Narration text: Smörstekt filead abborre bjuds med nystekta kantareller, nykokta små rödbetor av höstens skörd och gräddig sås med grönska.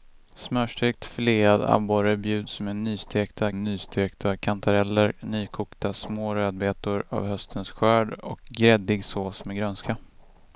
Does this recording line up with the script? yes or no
no